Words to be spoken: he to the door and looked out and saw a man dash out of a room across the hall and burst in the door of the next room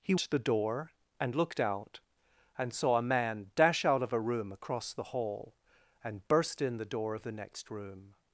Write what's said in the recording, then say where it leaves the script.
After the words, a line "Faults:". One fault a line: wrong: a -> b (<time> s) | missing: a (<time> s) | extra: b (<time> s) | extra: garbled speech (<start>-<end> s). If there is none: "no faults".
he to the door and looked out and saw a man dash out of a room across the hall and burst in the door of the next room
Faults:
no faults